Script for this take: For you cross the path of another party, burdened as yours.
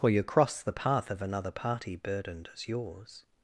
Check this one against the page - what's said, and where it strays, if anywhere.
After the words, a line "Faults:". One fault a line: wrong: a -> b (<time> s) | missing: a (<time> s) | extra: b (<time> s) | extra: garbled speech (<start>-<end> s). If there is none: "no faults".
For you cross the path of another party, burdened as yours.
Faults:
no faults